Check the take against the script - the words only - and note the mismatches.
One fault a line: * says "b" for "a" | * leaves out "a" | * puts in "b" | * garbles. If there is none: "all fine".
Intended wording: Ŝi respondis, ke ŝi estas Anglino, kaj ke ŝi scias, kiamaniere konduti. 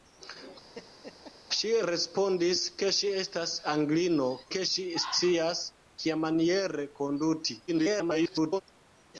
* leaves out "kaj"
* garbles